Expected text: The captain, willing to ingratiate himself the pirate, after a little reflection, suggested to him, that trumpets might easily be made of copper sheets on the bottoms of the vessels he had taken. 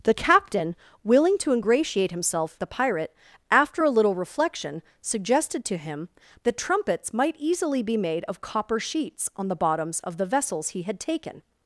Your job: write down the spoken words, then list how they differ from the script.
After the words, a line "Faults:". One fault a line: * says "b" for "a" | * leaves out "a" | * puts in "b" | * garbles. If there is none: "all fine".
The captain, willing to ingratiate himself the pirate, after a little reflection, suggested to him, that trumpets might easily be made of copper sheets on the bottoms of the vessels he had taken.
Faults:
all fine